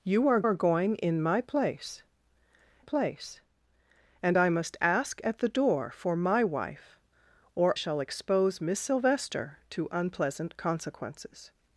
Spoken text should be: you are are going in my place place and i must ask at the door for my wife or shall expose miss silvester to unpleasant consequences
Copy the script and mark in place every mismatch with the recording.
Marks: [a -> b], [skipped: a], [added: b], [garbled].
you are are going in my place place and i must ask at the door for my wife or shall expose miss silvester to unpleasant consequences